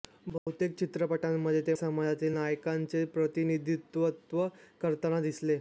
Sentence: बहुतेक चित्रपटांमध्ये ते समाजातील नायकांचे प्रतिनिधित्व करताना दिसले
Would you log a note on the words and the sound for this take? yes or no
yes